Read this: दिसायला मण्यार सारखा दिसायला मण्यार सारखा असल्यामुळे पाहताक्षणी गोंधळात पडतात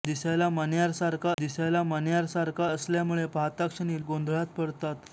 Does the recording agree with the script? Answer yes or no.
yes